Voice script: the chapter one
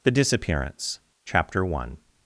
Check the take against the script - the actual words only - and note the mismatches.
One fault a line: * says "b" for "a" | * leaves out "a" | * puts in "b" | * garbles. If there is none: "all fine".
* puts in "disappearance"